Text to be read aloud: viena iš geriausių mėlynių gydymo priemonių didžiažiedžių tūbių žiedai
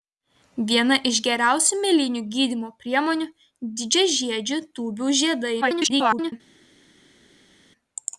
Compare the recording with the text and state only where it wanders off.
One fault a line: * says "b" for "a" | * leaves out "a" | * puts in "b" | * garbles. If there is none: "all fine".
* garbles